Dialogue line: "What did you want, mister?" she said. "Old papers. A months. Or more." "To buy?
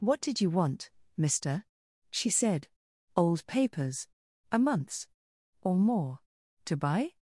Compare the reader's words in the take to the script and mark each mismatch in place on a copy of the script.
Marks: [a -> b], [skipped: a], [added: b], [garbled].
"What did you want, mister?" she said. "Old papers. A months. Or more." "To buy?